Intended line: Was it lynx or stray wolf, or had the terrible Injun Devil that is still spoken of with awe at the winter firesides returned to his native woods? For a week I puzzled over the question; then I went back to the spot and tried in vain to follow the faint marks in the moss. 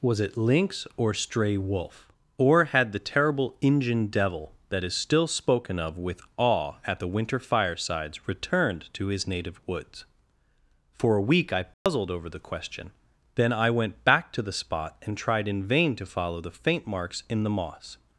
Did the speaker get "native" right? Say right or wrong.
right